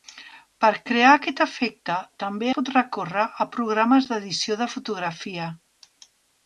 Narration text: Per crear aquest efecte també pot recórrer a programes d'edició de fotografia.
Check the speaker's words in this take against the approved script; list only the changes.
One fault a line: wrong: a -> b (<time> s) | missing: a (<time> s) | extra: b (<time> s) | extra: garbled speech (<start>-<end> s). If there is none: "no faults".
no faults